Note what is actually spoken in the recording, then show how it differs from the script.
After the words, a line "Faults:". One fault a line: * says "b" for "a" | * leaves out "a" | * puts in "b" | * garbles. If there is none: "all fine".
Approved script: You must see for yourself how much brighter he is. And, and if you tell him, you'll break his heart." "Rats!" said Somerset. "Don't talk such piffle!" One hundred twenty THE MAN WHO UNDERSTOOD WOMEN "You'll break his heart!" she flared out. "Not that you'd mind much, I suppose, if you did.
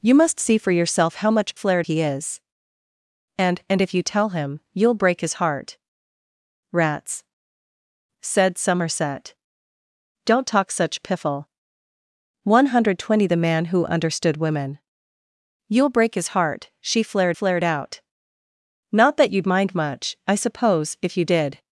You must see for yourself how much flared he is. And, and if you tell him, you'll break his heart." "Rats!" said Somerset. "Don't talk such piffle!" One hundred twenty THE MAN WHO UNDERSTOOD WOMEN "You'll break his heart!" she flared flared out. "Not that you'd mind much, I suppose, if you did.
Faults:
* says "flared" for "brighter"
* puts in "flared"